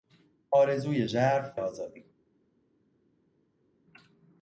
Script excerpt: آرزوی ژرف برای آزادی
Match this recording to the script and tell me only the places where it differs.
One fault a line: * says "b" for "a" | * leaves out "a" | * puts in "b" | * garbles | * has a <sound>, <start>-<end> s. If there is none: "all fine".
* leaves out "برای"